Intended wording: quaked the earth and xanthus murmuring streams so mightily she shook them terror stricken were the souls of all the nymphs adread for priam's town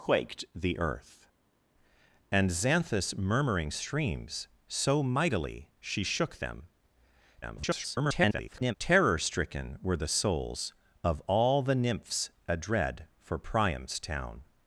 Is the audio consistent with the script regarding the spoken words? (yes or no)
no